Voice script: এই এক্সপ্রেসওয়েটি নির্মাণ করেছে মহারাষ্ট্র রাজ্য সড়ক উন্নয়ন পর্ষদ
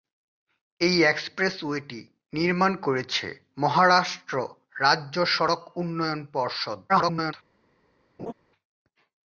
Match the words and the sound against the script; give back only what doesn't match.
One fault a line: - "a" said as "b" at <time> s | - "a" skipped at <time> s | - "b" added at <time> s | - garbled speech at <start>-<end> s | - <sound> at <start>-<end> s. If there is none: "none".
- garbled speech at 6.9-7.3 s
- laugh at 8.2-8.3 s